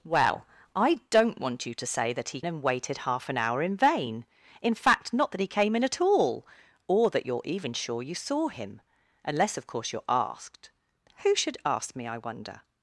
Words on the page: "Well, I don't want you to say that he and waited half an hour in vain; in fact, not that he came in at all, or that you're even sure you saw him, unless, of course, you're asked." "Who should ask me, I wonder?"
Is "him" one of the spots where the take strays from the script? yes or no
no